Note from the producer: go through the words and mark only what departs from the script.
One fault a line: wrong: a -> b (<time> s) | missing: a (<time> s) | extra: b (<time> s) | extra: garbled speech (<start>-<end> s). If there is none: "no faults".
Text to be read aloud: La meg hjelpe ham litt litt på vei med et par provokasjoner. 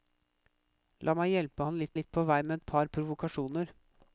no faults